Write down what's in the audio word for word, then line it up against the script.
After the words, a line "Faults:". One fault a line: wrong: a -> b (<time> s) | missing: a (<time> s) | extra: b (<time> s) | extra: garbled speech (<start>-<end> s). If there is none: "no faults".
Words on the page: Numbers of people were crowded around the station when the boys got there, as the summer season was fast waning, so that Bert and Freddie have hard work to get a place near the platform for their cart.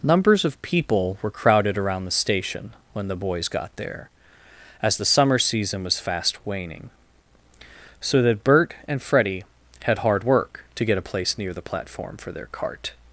Numbers of people were crowded around the station when the boys got there, as the summer season was fast waning, so that Bert and Freddie had hard work to get a place near the platform for their cart.
Faults:
wrong: have -> had (9.8 s)